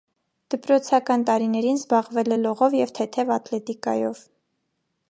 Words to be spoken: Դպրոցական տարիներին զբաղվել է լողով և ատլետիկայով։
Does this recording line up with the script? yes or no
no